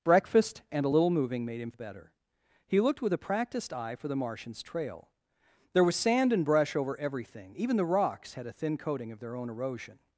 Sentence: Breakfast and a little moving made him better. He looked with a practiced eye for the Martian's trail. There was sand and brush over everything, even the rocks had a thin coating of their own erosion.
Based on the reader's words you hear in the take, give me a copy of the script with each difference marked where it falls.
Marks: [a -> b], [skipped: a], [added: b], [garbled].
Breakfast and a little moving made him better. He looked with a practiced eye for the Martian's trail. There was sand and brush over everything, even the rocks had a thin coating of their own erosion.